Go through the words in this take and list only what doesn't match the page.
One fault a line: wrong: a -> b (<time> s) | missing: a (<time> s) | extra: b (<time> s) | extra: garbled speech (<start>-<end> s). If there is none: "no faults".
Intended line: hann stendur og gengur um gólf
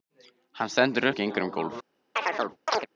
no faults